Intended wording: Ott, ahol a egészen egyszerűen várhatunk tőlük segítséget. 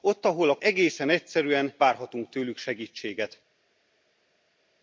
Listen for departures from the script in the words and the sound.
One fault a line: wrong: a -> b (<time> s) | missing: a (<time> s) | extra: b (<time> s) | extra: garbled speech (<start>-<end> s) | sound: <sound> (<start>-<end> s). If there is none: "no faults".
no faults